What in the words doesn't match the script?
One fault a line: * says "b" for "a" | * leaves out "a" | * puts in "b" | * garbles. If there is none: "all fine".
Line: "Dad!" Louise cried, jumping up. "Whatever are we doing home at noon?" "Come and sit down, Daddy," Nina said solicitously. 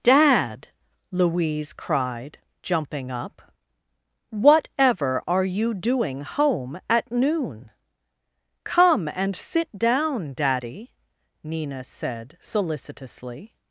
* says "you" for "we"